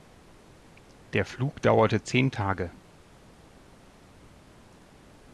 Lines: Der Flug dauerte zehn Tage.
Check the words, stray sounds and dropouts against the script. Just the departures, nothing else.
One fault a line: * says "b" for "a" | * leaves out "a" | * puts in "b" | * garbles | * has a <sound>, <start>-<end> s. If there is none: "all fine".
all fine